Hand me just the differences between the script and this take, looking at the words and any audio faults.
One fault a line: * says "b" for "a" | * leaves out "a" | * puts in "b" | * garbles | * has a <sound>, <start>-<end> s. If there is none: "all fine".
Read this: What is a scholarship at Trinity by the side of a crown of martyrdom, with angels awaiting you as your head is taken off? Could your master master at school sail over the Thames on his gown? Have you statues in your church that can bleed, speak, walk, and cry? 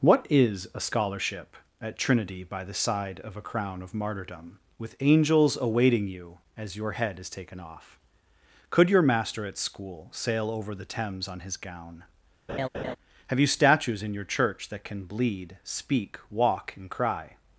* leaves out "master"
* has a laugh, 12.5-13.0 s